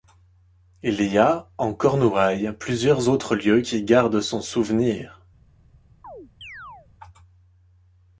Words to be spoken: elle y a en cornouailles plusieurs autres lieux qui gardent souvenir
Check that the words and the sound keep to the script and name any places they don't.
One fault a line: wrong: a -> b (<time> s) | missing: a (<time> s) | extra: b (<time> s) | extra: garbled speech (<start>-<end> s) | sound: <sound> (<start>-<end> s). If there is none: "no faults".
wrong: elle -> il (0.8 s)
extra: son (4.2 s)
sound: chirp (6.0-6.9 s)